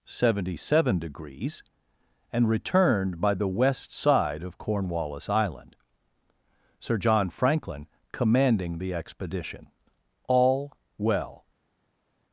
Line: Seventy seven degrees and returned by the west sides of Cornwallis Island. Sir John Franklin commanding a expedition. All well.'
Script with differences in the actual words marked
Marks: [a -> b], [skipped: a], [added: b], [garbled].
Seventy seven degrees and returned by the west [sides -> side] of Cornwallis Island. Sir John Franklin commanding [a -> the] expedition. All well.'